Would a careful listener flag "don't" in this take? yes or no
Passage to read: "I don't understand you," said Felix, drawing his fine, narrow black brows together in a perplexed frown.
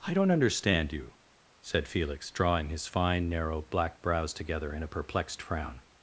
no